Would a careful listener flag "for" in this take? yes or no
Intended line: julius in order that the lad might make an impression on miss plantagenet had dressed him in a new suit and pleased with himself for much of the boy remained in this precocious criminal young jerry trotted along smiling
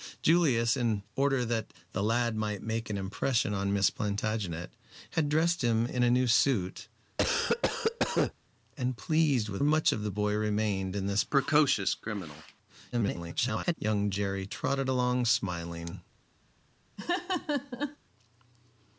yes